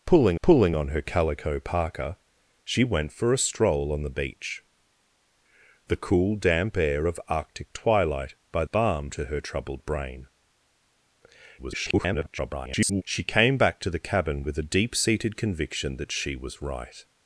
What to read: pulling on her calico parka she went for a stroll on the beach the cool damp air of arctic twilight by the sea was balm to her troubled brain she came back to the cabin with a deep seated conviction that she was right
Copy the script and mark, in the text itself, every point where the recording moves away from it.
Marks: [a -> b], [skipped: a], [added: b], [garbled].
pulling [added: pulling] on her calico parka she went for a stroll on the beach the cool damp air of arctic twilight by [skipped: the sea was] balm to her troubled brain [garbled] she came back to the cabin with a deep seated conviction that she was right